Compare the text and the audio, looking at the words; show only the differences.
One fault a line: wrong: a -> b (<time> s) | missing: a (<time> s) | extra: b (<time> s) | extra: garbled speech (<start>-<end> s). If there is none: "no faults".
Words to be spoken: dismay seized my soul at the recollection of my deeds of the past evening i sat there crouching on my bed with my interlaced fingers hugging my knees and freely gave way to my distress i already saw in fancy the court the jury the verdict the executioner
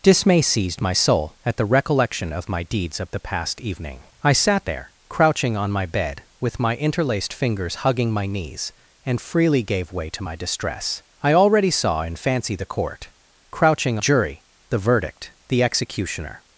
wrong: the -> crouching (13.5 s)